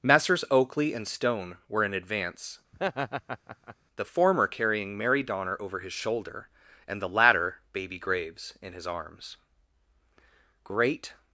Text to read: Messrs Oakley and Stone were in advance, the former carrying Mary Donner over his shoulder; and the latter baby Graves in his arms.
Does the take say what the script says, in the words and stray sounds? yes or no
no